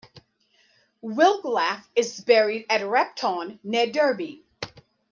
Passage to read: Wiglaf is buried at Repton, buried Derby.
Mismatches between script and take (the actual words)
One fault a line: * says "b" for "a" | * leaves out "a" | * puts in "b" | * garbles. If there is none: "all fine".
* says "near" for "buried"